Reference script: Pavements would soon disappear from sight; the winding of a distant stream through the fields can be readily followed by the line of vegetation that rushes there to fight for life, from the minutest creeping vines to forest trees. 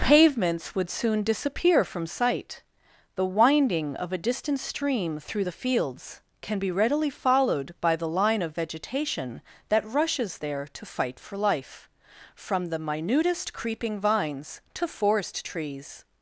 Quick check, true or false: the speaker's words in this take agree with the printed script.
true